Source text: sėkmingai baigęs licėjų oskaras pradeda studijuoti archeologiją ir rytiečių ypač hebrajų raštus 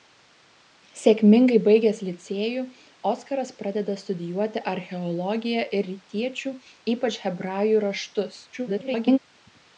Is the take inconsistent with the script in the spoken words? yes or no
yes